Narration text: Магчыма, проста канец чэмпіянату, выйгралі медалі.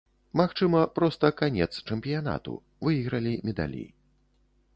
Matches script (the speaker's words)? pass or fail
pass